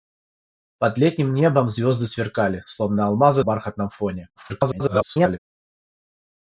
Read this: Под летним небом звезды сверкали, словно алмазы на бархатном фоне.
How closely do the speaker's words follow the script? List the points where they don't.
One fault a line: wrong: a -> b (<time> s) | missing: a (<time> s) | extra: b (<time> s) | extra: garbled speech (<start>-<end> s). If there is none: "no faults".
missing: на (3.4 s)
extra: garbled speech (4.4-5.4 s)